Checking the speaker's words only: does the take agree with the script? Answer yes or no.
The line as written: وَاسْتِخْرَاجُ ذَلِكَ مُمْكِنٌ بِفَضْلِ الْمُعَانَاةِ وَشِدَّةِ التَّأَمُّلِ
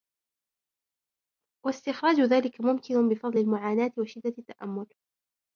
yes